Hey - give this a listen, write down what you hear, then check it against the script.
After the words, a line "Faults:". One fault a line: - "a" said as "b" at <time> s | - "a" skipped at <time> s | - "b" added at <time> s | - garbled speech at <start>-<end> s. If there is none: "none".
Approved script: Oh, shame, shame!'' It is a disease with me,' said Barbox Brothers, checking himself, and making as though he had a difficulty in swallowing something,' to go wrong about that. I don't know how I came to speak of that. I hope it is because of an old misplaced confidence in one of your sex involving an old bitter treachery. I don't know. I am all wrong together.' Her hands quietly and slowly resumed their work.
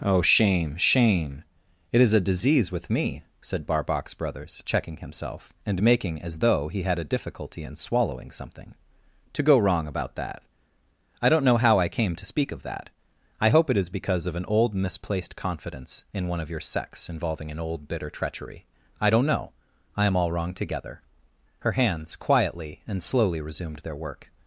Oh, shame, shame!'' It is a disease with me,' said Barbox Brothers, checking himself, and making as though he had a difficulty in swallowing something,' to go wrong about that. I don't know how I came to speak of that. I hope it is because of an old misplaced confidence in one of your sex involving an old bitter treachery. I don't know. I am all wrong together.' Her hands quietly and slowly resumed their work.
Faults:
none